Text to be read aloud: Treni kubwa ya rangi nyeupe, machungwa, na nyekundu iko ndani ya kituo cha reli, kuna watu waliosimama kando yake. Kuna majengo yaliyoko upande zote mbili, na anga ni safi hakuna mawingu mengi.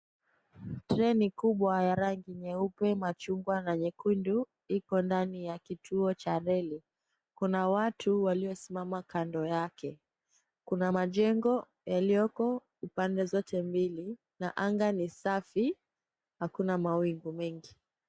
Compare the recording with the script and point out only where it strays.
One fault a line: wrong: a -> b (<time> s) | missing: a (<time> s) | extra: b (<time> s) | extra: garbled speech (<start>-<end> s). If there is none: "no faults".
no faults